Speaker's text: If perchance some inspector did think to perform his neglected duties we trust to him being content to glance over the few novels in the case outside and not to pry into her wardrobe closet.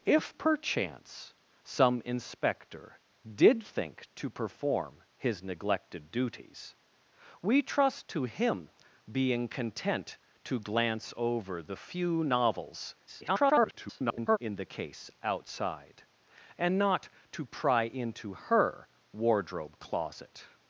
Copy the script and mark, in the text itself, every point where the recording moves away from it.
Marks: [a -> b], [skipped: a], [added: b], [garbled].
If perchance some inspector did think to perform his neglected duties we trust to him being content to glance over the few novels [garbled] in the case outside and not to pry into her wardrobe closet.